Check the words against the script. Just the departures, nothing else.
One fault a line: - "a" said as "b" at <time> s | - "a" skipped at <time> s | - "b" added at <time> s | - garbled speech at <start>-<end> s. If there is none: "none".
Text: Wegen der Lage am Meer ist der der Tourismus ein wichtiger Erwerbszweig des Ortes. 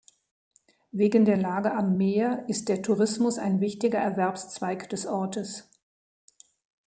- "der" skipped at 2.8 s